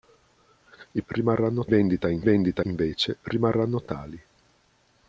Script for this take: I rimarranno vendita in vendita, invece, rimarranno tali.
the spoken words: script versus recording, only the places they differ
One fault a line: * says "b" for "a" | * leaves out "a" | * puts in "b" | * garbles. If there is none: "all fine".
all fine